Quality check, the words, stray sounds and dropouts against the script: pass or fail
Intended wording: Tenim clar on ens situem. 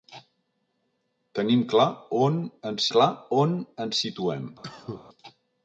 fail